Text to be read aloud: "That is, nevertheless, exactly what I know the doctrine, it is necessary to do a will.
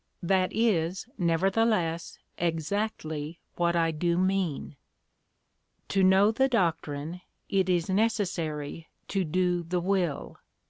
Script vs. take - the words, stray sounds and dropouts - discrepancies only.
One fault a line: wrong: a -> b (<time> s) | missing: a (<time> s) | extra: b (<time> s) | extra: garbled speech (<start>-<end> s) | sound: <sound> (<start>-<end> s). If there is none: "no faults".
extra: do mean To (3.9 s)
wrong: a -> the (9.6 s)